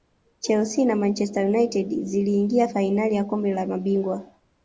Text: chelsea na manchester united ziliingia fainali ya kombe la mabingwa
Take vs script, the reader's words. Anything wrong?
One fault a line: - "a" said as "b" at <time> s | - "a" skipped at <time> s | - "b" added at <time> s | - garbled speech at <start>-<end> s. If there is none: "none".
none